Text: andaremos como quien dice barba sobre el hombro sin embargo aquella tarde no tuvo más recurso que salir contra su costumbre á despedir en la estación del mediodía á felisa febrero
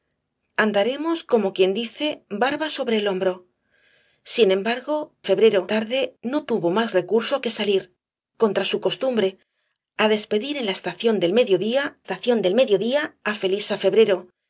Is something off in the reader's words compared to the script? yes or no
yes